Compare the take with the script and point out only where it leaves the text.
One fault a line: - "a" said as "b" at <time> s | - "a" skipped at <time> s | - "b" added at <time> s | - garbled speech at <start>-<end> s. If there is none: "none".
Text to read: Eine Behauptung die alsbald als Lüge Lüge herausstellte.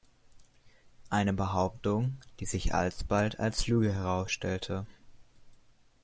- "sich" added at 2.5 s
- "Lüge" skipped at 3.9 s